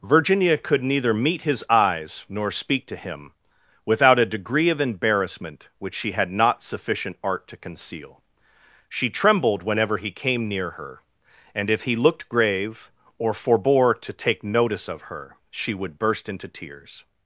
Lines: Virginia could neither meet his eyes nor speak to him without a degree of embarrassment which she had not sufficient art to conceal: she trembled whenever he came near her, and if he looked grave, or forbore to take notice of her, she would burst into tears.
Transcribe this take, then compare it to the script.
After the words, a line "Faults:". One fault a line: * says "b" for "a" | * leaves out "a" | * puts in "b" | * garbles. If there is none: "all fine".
Virginia could neither meet his eyes nor speak to him without a degree of embarrassment which she had not sufficient art to conceal: she trembled whenever he came near her, and if he looked grave, or forbore to take notice of her, she would burst into tears.
Faults:
all fine